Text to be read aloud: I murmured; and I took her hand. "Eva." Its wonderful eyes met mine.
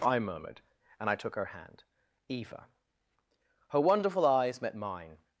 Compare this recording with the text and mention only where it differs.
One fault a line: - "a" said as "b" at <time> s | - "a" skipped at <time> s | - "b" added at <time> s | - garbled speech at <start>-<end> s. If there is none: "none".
- "Its" said as "Her" at 3.7 s